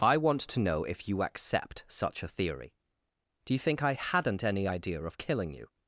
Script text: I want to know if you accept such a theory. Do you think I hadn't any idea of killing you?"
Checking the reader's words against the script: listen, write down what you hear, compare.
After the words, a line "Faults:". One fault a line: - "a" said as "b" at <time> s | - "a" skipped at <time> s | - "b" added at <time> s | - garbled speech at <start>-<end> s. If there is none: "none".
I want to know if you accept such a theory. Do you think I hadn't any idea of killing you?"
Faults:
none